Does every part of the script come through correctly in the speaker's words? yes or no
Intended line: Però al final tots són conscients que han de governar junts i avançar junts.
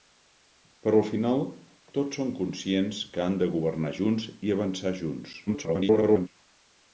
no